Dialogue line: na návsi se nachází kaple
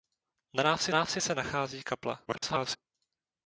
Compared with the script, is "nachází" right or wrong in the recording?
right